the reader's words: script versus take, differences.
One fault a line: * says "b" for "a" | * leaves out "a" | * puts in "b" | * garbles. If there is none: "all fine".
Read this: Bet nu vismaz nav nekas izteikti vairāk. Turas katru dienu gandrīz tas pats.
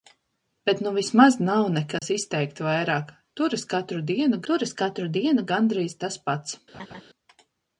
* puts in "turas katru dienu"